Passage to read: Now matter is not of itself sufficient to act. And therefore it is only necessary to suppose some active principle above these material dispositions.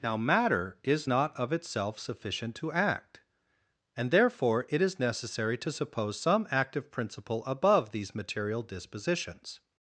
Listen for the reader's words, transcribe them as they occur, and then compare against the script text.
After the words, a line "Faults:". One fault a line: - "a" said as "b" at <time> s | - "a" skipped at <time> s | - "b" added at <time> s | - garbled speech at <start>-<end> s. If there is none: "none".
Now matter is not of itself sufficient to act. And therefore it is necessary to suppose some active principle above these material dispositions.
Faults:
- "only" skipped at 5.0 s